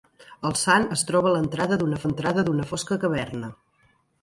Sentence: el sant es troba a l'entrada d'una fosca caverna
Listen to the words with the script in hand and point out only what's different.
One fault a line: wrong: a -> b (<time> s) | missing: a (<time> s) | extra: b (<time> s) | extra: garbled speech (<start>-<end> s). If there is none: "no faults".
extra: l'entrada d'una (2.0 s)